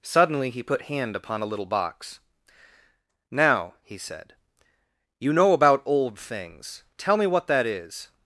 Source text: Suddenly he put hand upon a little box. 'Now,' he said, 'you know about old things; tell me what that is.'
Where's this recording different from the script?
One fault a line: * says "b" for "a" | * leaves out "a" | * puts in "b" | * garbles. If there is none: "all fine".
all fine